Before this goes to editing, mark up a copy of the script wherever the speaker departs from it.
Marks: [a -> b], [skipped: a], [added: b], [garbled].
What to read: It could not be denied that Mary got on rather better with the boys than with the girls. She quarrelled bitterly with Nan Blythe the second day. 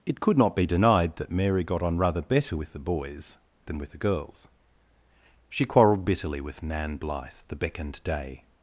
It could not be denied that Mary got on rather better with the boys than with the girls. She quarrelled bitterly with Nan Blythe the [second -> beckoned] day.